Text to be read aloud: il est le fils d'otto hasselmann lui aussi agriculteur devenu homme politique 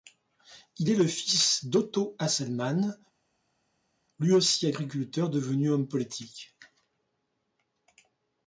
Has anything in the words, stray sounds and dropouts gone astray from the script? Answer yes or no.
no